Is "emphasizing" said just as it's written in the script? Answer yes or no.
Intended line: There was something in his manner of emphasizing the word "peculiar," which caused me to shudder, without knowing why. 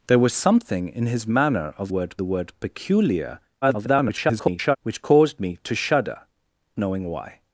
no